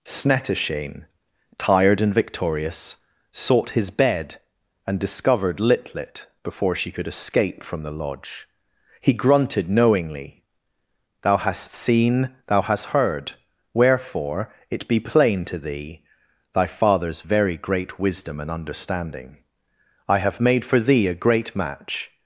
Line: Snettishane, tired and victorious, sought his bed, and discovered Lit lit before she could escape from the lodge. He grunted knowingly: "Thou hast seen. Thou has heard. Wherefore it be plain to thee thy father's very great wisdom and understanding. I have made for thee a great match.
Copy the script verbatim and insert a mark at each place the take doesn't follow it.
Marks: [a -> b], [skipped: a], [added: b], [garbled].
Snettishane, tired and victorious, sought his bed, and discovered Lit lit before she could escape from the lodge. He grunted knowingly: "Thou hast seen. Thou [has -> hast] heard. Wherefore it be plain to thee thy father's very great wisdom and understanding. I have made for thee a great match.